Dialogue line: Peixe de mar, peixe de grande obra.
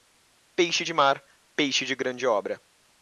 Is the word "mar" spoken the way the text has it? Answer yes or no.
yes